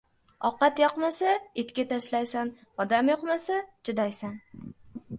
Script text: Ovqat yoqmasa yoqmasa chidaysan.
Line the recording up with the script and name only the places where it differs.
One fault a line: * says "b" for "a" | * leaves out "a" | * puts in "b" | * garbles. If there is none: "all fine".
* puts in "itga tashlaysan odam"